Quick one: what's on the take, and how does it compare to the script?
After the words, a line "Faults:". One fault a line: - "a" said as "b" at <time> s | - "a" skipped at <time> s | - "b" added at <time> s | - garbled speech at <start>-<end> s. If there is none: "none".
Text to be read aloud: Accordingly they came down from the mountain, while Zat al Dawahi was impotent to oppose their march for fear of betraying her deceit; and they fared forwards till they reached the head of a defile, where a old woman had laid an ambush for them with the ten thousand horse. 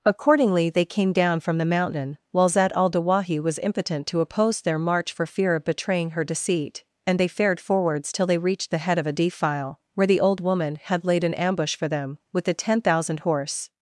Accordingly they came down from the mountain, while Zat al Dawahi was impotent to oppose their march for fear of betraying her deceit; and they fared forwards till they reached the head of a defile, where the old woman had laid an ambush for them with the ten thousand horse.
Faults:
- "a" said as "the" at 10.0 s